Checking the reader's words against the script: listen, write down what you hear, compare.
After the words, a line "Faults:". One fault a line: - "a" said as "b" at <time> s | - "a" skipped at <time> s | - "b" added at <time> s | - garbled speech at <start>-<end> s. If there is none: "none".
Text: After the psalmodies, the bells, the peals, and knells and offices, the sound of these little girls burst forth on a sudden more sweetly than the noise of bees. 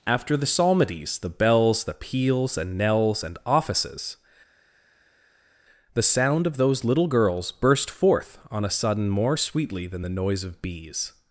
After the psalmodies, the bells, the peals, and knells and offices, the sound of those little girls burst forth on a sudden more sweetly than the noise of bees.
Faults:
- "these" said as "those" at 6.6 s